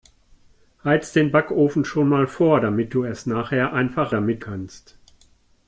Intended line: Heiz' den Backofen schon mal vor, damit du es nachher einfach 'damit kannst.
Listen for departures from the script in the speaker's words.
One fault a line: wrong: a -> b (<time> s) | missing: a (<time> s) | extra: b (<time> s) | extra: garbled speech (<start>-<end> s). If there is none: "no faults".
no faults